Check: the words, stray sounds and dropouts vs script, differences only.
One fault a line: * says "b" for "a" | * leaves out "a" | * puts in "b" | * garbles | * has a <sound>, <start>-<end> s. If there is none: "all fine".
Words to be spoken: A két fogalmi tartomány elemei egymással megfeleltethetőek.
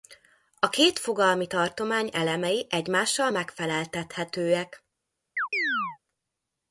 * has a chirp, 5.4-6.0 s